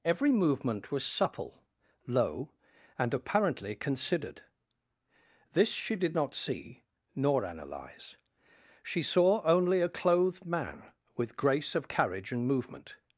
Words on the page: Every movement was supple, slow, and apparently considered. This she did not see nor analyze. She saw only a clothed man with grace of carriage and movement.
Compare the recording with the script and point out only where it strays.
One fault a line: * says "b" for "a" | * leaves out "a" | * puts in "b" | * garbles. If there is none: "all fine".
* says "low" for "slow"